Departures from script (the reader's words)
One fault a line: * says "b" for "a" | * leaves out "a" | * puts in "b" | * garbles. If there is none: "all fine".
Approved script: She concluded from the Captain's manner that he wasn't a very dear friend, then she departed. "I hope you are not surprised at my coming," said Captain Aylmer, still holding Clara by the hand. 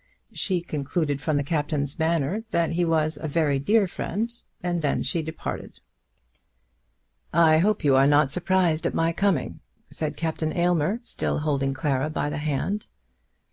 * says "was" for "wasn't"
* puts in "and"